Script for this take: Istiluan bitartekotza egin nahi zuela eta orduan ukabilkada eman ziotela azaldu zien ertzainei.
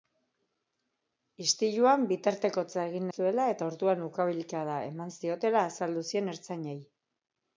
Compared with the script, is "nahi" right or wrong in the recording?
wrong